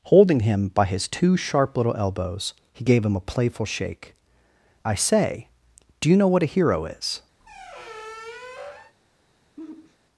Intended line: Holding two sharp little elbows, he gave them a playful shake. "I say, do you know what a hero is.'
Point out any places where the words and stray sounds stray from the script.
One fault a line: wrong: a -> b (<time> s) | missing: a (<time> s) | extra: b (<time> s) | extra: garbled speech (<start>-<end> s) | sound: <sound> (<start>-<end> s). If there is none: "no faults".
extra: him by his (0.4 s)
wrong: them -> him (3.0 s)
sound: squeak (7.4-8.9 s)
sound: sigh (9.6-10.0 s)